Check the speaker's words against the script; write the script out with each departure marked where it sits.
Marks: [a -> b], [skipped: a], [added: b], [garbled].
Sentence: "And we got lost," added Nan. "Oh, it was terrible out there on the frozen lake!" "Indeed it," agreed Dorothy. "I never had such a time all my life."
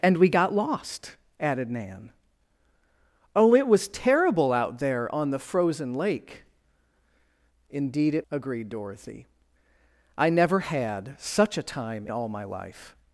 "And we got lost," added Nan. "Oh, it was terrible out there on the frozen lake!" "Indeed it," agreed Dorothy. "I never had such a time all my life."